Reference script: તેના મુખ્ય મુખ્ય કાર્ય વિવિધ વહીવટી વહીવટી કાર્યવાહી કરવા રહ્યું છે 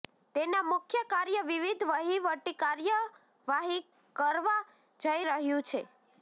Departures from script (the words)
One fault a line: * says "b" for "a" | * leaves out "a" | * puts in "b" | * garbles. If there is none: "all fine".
* leaves out "મુખ્ય"
* leaves out "વહીવટી"
* puts in "જઈ"